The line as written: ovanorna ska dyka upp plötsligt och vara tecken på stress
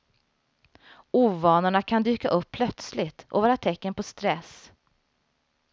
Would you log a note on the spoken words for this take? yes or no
yes